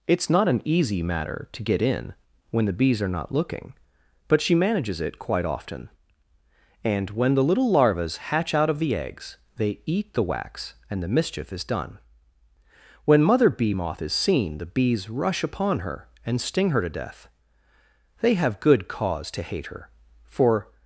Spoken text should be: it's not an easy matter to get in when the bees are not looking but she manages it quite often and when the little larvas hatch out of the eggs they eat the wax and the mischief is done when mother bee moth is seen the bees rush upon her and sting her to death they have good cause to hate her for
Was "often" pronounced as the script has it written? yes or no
yes